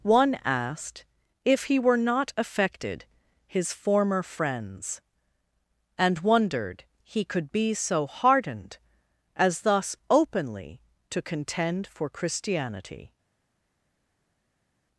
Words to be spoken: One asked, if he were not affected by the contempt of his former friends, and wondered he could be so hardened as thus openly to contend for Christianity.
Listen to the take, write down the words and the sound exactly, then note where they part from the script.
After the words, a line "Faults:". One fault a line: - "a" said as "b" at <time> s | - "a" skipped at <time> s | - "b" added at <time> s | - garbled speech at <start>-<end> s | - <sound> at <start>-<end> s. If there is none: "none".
One asked, if he were not affected his former friends, and wondered he could be so hardened as thus openly to contend for Christianity.
Faults:
- "by the contempt of" skipped at 3.0 s